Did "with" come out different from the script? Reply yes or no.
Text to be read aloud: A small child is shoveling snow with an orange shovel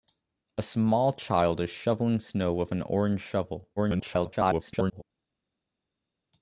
no